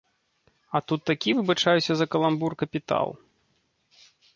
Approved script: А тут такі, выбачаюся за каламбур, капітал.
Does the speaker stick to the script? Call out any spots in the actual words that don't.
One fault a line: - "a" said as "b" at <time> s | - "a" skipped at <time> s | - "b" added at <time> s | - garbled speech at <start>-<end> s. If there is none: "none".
none